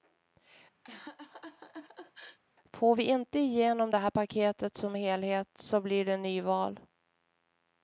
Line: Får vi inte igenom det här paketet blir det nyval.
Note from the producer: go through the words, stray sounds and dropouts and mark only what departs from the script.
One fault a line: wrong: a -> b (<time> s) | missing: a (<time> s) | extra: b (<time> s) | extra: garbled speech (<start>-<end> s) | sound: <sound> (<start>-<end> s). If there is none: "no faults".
sound: laugh (0.8-2.4 s)
extra: som helhet så (4.8 s)